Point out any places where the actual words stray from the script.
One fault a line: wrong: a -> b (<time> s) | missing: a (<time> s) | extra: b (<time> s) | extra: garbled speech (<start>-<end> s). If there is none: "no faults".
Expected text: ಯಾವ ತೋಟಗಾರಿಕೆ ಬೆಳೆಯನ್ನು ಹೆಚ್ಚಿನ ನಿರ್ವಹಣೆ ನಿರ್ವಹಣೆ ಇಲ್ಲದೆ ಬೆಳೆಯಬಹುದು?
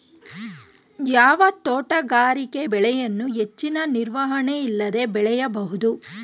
missing: ನಿರ್ವಹಣೆ (4.6 s)